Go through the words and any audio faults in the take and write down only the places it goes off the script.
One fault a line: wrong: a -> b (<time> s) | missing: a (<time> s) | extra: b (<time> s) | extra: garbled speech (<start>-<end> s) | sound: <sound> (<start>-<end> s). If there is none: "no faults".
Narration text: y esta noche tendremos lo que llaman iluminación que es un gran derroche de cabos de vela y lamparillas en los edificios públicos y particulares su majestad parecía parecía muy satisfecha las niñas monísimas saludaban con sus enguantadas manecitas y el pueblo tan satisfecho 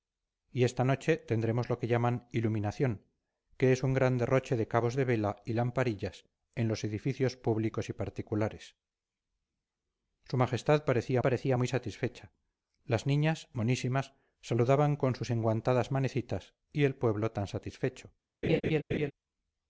sound: laugh (18.4-19.1 s)